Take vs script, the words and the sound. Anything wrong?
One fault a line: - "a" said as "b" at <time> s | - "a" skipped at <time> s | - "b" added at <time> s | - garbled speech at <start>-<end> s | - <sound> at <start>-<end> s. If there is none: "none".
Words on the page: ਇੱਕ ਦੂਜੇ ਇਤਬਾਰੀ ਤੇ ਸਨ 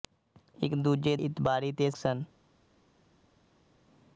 none